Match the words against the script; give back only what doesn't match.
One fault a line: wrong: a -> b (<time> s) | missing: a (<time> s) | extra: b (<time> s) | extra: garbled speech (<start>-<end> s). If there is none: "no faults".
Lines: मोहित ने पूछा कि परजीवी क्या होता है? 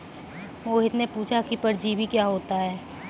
no faults